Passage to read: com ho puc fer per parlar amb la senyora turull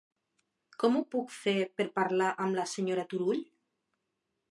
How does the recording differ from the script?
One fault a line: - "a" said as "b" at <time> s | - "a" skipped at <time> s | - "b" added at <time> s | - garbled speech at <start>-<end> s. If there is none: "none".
none